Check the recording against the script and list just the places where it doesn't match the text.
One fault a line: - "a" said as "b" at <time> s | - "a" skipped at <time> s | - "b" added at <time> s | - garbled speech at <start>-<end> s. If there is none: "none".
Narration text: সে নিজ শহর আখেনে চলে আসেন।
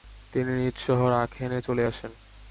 - "সে" said as "তিনি" at 0.3 s